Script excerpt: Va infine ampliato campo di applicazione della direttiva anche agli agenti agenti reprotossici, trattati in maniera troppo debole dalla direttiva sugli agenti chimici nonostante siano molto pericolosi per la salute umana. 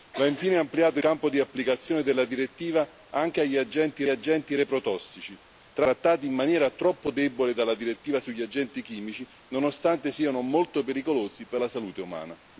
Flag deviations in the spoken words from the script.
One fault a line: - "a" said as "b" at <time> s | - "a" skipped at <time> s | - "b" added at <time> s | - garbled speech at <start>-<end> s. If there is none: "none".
none